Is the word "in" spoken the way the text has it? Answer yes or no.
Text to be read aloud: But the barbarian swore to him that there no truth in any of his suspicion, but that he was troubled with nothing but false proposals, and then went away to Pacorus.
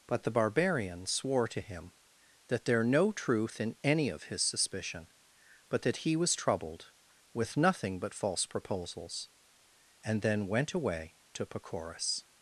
yes